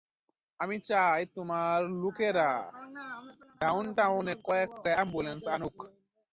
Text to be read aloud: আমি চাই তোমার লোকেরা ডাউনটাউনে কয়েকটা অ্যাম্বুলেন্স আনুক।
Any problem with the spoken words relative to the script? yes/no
no